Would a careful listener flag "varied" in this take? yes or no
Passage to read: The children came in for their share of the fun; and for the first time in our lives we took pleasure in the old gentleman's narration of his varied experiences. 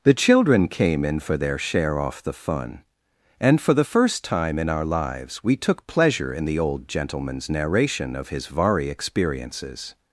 yes